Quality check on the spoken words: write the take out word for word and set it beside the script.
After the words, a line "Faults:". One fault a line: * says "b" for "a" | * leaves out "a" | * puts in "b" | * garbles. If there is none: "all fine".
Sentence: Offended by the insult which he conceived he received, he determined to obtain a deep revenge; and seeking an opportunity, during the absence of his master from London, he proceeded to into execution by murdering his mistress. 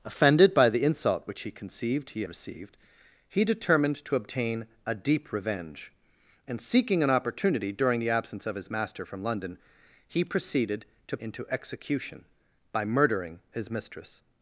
Offended by the insult which he conceived he received, he determined to obtain a deep revenge; and seeking an opportunity, during the absence of his master from London, he proceeded to into execution by murdering his mistress.
Faults:
all fine